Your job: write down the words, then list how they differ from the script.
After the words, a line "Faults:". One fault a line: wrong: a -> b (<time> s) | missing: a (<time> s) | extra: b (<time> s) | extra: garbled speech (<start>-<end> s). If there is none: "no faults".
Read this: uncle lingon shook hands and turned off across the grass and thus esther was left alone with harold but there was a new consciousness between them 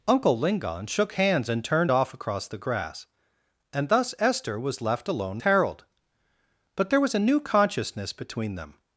uncle lingon shook hands and turned off across the grass and thus esther was left alone harold but there was a new consciousness between them
Faults:
missing: with (5.4 s)